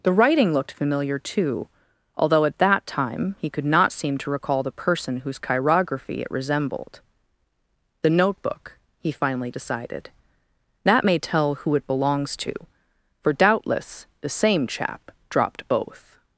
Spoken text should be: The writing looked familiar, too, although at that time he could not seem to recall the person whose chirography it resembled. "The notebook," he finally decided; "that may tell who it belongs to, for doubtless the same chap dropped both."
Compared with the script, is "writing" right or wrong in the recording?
right